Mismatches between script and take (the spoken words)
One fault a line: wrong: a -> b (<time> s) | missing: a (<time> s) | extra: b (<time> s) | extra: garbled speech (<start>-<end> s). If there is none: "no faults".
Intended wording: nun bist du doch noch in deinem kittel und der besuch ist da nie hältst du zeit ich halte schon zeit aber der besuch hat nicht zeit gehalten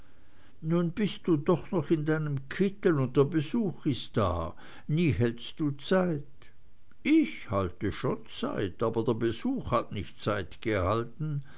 no faults